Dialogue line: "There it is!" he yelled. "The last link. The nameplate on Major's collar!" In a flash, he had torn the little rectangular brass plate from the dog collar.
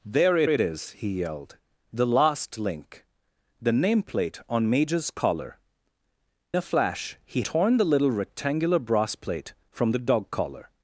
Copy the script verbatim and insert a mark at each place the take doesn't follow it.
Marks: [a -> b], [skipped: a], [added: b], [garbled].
"There it [added: it] is!" he yelled. "The last link. The nameplate on Major's collar!" [skipped: In] a flash, he [skipped: had] torn the little rectangular brass plate from the dog collar.